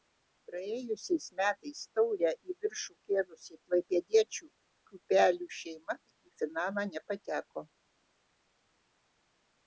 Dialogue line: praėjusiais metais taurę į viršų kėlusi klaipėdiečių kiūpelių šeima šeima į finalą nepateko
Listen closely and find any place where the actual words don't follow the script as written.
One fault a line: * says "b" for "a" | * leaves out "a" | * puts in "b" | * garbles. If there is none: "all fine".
* leaves out "šeima"